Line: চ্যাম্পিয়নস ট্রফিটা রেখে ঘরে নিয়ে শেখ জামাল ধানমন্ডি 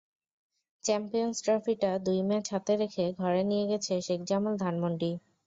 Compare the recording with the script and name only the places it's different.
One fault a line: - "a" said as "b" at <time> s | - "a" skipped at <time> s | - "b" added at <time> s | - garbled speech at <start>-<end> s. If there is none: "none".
- "দুই ম্যাচ হাতে" added at 2.0 s
- "গেছে" added at 3.7 s